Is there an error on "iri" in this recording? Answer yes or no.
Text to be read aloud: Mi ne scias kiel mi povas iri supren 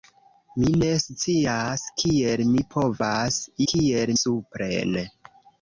yes